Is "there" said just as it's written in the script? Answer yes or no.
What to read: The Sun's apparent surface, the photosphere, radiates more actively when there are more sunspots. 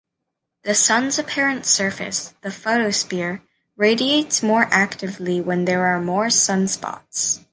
yes